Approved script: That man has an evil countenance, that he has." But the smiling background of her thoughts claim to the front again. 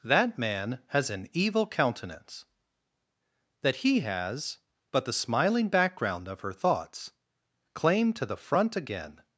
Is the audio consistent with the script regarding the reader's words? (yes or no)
yes